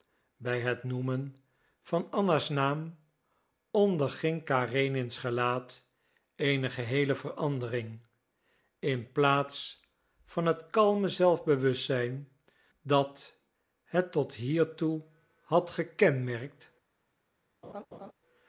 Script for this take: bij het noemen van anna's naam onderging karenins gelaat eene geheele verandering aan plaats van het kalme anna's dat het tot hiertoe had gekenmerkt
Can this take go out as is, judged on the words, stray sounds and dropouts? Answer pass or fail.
fail